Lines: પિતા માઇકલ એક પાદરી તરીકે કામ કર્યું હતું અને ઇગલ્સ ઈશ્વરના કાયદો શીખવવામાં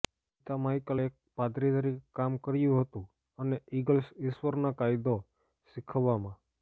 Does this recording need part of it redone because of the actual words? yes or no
no